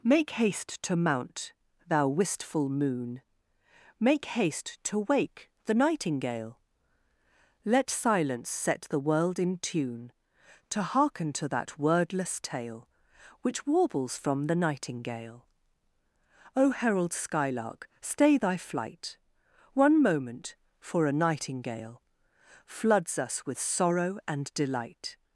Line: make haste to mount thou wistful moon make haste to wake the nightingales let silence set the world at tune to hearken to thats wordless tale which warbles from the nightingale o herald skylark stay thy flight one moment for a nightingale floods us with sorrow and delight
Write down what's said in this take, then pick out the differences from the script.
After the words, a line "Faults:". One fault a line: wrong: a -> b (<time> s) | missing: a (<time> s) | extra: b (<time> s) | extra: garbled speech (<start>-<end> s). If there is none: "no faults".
make haste to mount thou wistful moon make haste to wake the nightingale let silence set the world in tune to hearken to that wordless tale which warbles from the nightingale o herald skylark stay thy flight one moment for a nightingale floods us with sorrow and delight
Faults:
wrong: nightingales -> nightingale (5.8 s)
wrong: at -> in (9.4 s)
wrong: thats -> that (11.5 s)